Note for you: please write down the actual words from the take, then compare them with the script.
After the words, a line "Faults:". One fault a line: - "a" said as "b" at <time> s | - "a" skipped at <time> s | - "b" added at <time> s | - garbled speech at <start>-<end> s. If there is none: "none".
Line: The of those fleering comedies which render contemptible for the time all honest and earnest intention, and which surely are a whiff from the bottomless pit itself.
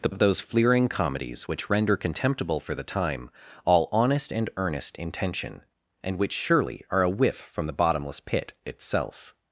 The of those fleering comedies which render contemptible for the time all honest and earnest intention, and which surely are a whiff from the bottomless pit itself.
Faults:
none